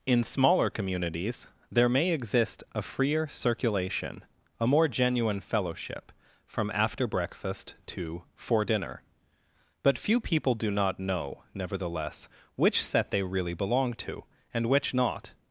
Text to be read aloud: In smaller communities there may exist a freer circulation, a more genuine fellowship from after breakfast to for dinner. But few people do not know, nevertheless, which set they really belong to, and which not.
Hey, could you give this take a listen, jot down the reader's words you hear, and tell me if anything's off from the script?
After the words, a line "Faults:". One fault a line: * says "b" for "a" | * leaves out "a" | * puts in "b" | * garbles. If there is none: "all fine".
In smaller communities there may exist a freer circulation, a more genuine fellowship from after breakfast to for dinner. But few people do not know, nevertheless, which set they really belong to, and which not.
Faults:
all fine